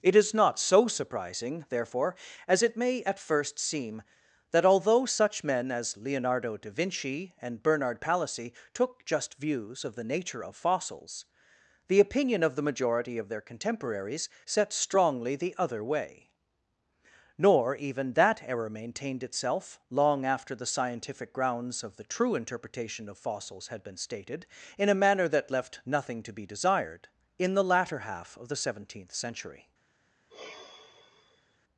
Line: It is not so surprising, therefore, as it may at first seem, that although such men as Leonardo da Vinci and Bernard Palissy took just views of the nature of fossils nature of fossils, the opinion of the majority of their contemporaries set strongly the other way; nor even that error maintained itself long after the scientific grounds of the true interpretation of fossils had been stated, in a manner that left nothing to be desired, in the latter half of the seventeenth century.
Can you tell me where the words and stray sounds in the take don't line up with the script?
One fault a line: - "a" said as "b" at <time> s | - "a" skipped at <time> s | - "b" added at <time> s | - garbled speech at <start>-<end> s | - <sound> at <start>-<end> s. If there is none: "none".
- "nature of fossils" skipped at 11.3 s
- sigh at 30.3-31.6 s